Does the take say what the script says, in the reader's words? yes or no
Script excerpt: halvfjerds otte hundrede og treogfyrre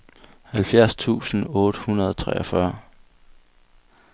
no